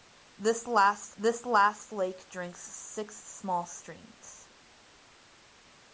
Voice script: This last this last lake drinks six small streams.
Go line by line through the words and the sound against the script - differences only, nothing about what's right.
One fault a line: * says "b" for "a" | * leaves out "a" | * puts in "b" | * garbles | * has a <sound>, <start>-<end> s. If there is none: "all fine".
all fine